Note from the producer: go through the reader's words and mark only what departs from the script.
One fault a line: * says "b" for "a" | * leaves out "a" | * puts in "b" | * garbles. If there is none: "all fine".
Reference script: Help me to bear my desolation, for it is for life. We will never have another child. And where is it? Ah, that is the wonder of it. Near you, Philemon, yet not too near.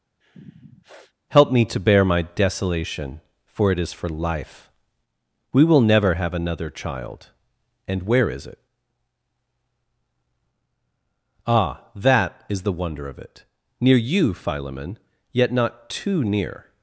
all fine